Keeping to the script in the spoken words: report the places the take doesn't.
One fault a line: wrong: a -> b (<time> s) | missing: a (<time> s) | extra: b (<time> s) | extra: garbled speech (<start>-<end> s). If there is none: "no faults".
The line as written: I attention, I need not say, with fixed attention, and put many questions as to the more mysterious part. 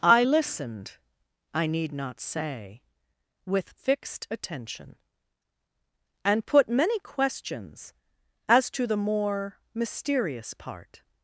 wrong: attention -> listened (0.2 s)